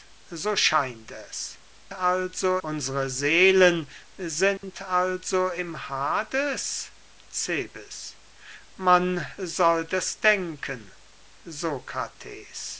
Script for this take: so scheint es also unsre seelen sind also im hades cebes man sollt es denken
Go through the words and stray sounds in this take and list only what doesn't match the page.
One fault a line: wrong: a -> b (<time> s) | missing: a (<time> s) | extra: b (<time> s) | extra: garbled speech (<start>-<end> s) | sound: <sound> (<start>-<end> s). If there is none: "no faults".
sound: dropout (4.6-4.6 s)